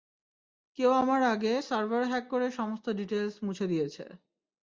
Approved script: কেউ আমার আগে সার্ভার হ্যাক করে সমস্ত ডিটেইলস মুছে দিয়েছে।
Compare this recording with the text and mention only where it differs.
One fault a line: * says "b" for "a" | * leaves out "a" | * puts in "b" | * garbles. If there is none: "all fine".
all fine